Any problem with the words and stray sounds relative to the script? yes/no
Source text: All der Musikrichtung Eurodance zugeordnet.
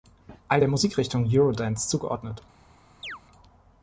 yes